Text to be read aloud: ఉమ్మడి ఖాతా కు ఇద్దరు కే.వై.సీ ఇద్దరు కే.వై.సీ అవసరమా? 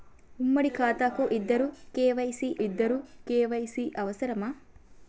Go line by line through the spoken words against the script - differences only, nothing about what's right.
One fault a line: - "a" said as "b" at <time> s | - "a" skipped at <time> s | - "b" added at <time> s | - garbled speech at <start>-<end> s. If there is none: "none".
none